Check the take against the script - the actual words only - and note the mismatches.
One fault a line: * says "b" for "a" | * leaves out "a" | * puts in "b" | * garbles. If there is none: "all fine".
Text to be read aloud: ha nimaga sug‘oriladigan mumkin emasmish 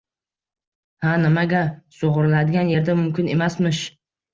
* puts in "yerda"